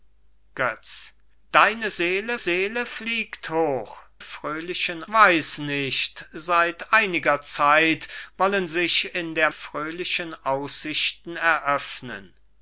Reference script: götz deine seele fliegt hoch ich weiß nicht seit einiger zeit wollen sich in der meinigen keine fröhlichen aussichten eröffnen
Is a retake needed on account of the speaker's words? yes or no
yes